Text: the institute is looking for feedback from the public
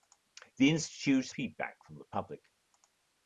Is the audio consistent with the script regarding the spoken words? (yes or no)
no